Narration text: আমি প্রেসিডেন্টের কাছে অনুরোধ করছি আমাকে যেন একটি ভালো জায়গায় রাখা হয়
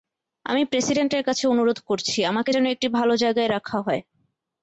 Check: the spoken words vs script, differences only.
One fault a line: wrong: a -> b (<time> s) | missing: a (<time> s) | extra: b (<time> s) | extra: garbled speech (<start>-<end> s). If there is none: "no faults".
no faults